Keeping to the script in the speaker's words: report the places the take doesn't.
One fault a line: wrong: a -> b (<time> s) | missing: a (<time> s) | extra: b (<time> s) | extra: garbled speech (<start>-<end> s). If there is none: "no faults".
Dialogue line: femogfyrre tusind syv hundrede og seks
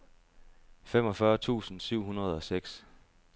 no faults